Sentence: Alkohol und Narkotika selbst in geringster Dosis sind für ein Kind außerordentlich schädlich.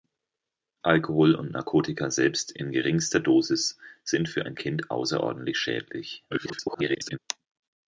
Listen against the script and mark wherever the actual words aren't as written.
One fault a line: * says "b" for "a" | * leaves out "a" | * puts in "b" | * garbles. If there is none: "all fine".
* garbles